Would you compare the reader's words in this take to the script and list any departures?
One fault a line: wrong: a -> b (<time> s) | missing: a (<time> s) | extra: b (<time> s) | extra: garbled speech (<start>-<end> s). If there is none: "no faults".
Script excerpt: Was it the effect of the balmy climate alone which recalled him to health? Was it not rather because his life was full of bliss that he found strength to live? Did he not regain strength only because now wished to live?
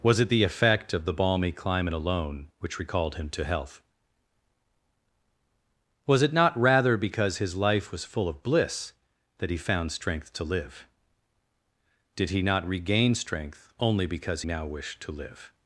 no faults